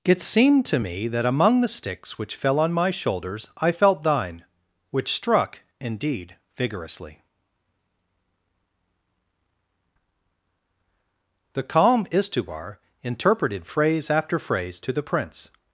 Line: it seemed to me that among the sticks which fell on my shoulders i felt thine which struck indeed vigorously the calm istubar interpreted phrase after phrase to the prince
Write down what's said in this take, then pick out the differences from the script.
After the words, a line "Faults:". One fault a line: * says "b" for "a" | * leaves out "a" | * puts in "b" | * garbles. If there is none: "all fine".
it seemed to me that among the sticks which fell on my shoulders i felt thine which struck indeed vigorously the calm istubar interpreted phrase after phrase to the prince
Faults:
all fine